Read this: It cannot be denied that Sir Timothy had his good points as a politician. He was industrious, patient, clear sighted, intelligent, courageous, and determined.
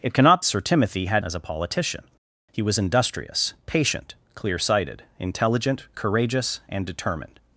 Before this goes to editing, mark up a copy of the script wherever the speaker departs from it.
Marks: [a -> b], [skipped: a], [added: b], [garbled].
It cannot [skipped: be denied that] Sir Timothy had [skipped: his good points] as a politician. He was industrious, patient, clear sighted, intelligent, courageous, and determined.